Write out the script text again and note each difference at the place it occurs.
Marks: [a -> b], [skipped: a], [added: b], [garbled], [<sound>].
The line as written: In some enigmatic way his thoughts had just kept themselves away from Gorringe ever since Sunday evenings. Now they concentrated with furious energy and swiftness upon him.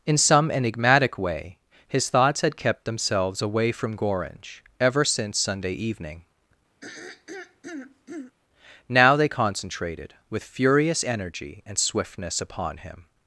In some enigmatic way his thoughts had [skipped: just] kept themselves away from Gorringe ever since Sunday [evenings. -> evening] [throat clearing] Now they concentrated with furious energy and swiftness upon him.